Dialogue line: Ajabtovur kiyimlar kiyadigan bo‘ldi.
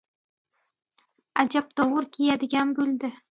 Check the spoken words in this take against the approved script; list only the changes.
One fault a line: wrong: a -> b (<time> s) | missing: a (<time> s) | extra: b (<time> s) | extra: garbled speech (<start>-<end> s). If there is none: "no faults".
missing: kiyimlar (2.1 s)